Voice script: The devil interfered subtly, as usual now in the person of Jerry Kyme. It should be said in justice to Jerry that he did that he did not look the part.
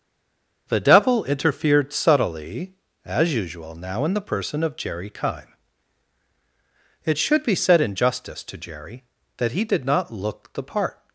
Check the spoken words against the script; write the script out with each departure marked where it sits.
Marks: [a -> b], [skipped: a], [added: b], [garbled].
The devil interfered subtly, as usual now in the person of Jerry Kyme. It should be said in justice to Jerry that he did [skipped: that he did] not look the part.